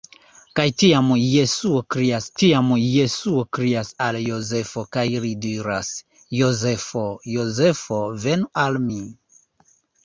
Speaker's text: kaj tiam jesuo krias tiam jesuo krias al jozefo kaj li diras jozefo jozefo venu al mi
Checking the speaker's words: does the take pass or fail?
pass